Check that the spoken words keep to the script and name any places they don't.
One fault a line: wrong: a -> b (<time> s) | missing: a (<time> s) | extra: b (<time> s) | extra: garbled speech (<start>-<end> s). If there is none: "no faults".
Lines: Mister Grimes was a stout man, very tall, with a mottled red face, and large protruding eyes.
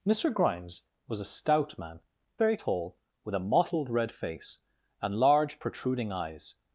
no faults